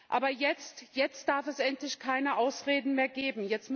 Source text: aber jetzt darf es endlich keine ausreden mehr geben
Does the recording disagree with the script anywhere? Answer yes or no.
no